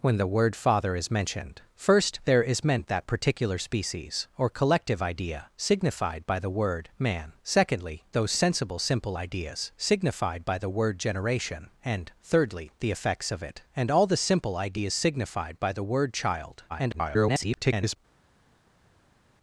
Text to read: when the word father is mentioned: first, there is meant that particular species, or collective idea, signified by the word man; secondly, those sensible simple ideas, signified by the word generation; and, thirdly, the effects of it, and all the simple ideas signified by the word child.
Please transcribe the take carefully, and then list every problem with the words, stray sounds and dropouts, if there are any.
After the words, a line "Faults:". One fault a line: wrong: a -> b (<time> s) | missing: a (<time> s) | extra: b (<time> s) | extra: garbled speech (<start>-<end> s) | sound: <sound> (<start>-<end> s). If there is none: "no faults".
when the word father is mentioned: first, there is meant that particular species, or collective idea, signified by the word man; secondly, those sensible simple ideas, signified by the word generation; and, thirdly, the effects of it, and all the simple ideas signified by the word child. [garbled]
Faults:
extra: garbled speech (16.7-18.0 s)